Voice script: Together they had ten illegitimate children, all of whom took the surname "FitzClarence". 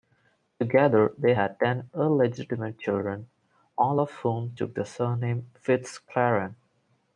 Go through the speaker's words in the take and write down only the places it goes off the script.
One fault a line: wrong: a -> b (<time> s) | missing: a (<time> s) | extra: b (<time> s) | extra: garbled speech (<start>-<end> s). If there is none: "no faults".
no faults